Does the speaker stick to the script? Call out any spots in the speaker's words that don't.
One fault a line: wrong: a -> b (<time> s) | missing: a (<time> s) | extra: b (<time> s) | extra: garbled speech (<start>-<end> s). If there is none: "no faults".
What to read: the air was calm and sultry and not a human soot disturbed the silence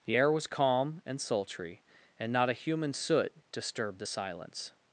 no faults